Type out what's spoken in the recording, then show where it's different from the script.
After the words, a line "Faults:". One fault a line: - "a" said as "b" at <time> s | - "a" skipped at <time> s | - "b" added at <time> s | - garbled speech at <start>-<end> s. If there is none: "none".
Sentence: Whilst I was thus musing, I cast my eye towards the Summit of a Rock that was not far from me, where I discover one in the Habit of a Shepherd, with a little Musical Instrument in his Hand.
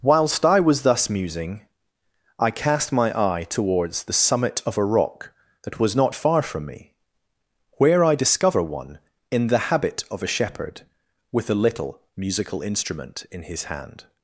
Whilst I was thus musing, I cast my eye towards the Summit of a Rock that was not far from me, where I discover one in the Habit of a Shepherd, with a little Musical Instrument in his Hand.
Faults:
none